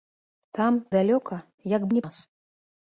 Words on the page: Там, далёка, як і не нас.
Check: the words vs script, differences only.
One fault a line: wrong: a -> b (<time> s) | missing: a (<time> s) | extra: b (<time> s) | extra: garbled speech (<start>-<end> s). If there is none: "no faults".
no faults